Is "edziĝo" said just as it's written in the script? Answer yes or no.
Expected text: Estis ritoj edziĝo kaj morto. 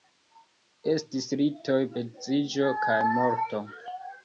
yes